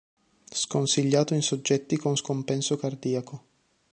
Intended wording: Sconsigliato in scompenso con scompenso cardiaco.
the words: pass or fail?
fail